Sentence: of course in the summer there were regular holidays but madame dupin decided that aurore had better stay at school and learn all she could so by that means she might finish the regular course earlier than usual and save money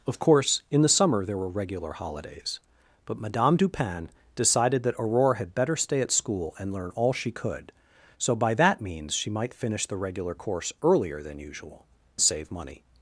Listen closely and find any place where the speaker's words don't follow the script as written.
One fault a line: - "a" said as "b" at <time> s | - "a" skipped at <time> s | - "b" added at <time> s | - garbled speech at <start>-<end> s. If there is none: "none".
- "and" skipped at 11.8 s